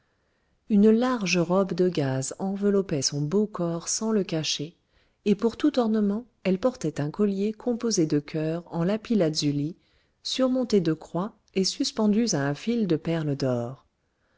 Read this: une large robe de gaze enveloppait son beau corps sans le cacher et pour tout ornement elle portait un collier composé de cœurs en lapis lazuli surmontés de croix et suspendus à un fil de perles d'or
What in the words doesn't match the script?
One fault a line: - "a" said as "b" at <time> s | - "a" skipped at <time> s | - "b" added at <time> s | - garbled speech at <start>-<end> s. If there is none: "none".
none